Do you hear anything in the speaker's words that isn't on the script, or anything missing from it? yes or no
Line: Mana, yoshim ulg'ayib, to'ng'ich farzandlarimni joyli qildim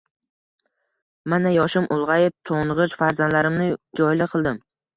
no